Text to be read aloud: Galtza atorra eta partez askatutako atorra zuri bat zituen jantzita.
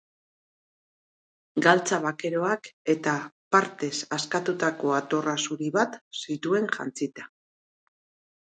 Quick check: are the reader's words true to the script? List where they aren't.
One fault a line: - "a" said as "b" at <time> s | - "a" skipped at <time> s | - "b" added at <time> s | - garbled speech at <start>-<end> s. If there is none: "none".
- "atorra" said as "bakeroak" at 2.0 s